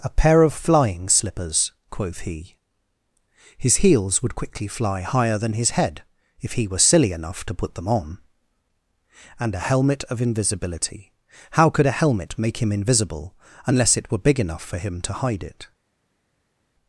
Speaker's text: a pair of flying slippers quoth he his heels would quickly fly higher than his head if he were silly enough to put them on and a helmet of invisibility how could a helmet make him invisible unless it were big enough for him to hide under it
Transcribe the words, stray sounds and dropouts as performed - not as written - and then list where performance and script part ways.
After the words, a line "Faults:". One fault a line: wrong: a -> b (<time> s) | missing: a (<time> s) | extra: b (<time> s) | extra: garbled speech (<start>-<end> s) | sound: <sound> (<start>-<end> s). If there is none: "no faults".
a pair of flying slippers quoth he his heels would quickly fly higher than his head if he were silly enough to put them on and a helmet of invisibility how could a helmet make him invisible unless it were big enough for him to hide it
Faults:
missing: under (15.4 s)